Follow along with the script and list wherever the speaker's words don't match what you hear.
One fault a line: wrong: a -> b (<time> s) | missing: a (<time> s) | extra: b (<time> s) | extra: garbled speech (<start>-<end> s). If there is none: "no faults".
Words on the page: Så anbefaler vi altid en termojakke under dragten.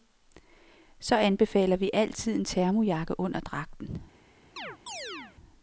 no faults